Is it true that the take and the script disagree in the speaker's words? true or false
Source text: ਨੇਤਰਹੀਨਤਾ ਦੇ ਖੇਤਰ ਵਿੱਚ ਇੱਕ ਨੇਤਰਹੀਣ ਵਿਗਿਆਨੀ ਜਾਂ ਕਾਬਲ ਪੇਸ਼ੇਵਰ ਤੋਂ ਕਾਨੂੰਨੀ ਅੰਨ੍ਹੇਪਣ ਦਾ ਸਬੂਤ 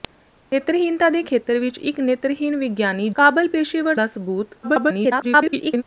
true